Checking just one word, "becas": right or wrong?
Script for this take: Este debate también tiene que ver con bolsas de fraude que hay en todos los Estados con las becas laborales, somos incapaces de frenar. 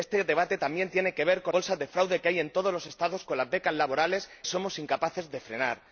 right